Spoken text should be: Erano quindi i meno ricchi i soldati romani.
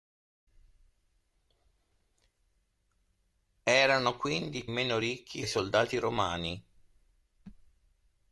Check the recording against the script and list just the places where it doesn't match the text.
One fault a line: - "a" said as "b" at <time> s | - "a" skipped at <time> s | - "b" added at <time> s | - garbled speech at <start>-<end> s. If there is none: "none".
none